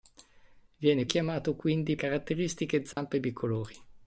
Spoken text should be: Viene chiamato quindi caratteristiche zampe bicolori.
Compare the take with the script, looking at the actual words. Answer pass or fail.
pass